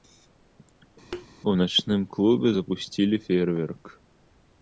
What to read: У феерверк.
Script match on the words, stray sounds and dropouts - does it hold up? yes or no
no